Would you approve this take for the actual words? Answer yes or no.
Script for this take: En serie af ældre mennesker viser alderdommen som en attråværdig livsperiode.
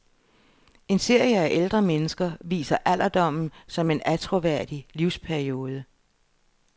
yes